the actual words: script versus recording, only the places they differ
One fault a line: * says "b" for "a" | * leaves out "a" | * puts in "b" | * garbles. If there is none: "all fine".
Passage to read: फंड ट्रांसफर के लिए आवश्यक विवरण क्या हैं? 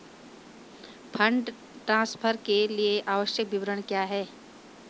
all fine